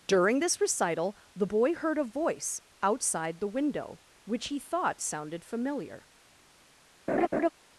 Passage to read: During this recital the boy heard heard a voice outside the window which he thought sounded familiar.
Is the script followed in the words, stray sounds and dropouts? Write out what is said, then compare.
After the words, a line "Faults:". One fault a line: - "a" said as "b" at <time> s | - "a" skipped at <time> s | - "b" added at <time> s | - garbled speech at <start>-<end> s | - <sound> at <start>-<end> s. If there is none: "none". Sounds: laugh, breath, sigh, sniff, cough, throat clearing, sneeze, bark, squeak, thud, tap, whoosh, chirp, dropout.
During this recital the boy heard a voice outside the window which he thought sounded familiar.
Faults:
- "heard" skipped at 2.0 s
- laugh at 7.1-7.5 s